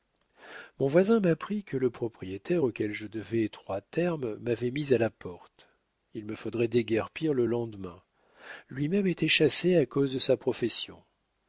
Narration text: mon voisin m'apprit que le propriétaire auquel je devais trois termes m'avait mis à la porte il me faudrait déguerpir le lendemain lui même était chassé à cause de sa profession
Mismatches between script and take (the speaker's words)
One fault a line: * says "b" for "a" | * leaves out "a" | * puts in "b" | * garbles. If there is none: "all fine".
all fine